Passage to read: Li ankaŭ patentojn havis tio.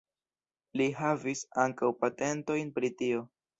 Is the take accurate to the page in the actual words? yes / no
no